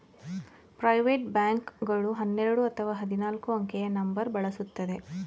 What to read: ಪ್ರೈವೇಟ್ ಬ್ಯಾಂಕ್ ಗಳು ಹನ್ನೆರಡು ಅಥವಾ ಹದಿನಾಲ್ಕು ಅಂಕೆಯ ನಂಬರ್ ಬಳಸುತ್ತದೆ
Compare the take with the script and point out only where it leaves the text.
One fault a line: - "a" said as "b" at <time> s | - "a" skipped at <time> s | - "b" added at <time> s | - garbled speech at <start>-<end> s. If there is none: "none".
none